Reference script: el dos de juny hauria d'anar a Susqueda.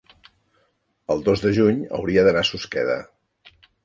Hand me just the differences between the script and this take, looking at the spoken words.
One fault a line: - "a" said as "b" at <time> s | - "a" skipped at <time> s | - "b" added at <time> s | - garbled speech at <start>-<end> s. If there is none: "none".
none